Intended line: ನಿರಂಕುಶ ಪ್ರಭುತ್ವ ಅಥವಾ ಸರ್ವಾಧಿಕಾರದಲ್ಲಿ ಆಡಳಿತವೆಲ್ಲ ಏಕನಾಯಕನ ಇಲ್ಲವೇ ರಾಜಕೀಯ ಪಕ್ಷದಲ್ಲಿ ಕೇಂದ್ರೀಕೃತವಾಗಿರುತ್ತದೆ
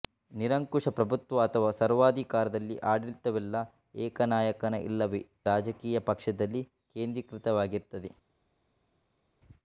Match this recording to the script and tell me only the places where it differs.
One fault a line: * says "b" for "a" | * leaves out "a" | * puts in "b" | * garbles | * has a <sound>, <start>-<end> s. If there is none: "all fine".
all fine